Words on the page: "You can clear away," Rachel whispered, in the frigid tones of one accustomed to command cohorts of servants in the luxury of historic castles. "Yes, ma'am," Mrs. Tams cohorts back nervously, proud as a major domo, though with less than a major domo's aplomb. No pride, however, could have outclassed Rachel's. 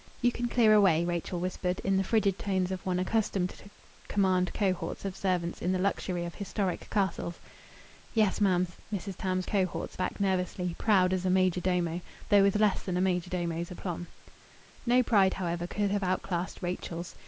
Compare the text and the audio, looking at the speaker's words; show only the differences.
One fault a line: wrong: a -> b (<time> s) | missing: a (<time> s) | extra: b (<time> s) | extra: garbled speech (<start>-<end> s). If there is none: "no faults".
no faults